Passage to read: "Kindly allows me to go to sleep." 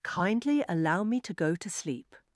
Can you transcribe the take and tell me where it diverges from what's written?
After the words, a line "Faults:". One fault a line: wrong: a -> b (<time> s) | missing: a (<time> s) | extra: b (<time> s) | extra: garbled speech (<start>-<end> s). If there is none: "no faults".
"Kindly allow me to go to sleep."
Faults:
wrong: allows -> allow (0.7 s)